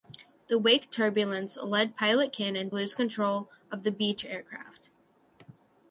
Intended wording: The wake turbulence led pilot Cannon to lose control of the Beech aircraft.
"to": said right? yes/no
no